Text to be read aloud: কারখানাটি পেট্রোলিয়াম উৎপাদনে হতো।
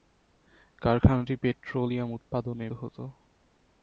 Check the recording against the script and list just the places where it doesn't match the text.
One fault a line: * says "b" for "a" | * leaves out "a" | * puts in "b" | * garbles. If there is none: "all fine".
all fine